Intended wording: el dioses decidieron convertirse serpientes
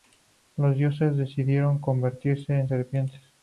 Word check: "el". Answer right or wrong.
wrong